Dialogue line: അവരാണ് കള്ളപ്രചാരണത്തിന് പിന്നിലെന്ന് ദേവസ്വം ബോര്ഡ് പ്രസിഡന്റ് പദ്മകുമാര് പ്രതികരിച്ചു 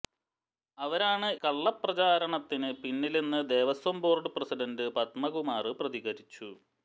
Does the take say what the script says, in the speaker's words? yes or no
yes